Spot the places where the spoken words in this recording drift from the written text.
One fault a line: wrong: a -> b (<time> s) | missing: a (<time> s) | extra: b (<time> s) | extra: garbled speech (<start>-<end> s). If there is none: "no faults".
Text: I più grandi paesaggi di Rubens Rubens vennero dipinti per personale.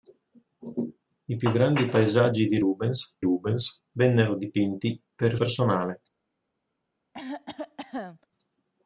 no faults